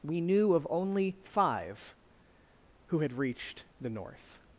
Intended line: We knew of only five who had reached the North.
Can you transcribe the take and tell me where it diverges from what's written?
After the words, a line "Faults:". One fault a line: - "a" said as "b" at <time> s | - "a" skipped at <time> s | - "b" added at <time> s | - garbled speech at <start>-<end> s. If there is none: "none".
We knew of only five who had reached the North.
Faults:
none